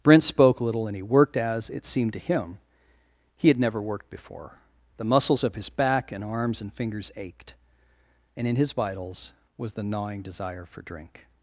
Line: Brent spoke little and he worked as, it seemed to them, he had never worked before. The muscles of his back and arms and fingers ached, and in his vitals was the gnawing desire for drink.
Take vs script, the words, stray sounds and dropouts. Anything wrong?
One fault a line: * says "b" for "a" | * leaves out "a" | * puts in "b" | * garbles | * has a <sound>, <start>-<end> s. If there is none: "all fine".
* says "him" for "them"